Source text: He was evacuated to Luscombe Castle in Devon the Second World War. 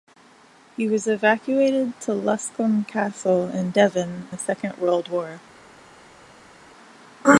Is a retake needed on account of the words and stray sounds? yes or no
no